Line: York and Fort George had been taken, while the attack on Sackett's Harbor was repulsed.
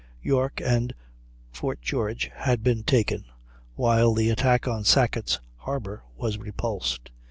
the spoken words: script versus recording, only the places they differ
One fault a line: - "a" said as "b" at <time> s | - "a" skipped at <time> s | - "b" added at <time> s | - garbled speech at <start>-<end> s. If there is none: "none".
none